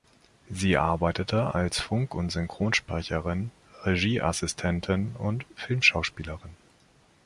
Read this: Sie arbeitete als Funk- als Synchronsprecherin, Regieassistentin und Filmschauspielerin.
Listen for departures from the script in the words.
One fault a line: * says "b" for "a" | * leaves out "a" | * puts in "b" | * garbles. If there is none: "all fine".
* says "und" for "als"